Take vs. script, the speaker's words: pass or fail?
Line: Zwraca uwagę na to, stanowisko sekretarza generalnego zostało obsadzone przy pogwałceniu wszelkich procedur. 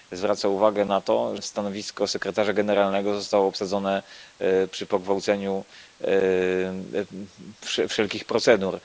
pass